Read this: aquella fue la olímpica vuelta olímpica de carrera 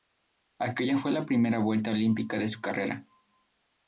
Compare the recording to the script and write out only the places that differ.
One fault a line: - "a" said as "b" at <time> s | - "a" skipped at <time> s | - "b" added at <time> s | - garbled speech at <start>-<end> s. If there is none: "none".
- "olímpica" said as "primera" at 1.3 s
- "su" added at 2.5 s